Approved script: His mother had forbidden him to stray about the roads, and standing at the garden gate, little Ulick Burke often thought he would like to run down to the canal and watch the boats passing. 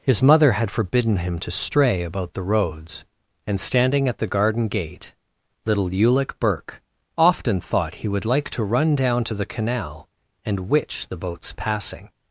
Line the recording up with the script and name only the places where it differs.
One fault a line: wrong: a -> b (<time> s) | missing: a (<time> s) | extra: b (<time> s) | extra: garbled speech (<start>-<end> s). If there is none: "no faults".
wrong: watch -> witch (10.7 s)